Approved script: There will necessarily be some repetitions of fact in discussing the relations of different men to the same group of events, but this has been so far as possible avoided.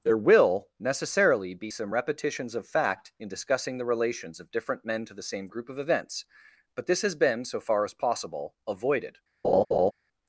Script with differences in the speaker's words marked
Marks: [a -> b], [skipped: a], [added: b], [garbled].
There will necessarily be some repetitions of fact in discussing the relations of different men to the same group of events, but this has been so far as possible avoided.